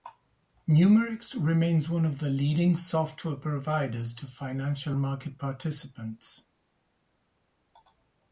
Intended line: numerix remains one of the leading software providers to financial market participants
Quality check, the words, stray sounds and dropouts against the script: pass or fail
pass